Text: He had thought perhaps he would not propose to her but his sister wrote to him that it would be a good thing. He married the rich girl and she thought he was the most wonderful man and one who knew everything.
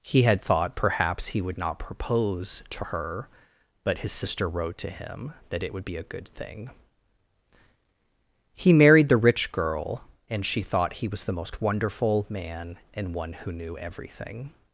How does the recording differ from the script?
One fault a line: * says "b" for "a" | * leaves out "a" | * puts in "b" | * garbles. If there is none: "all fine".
all fine